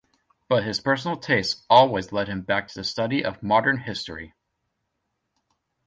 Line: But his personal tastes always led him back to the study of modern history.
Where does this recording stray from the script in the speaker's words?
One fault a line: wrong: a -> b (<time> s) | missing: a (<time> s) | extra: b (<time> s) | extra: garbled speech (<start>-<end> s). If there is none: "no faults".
no faults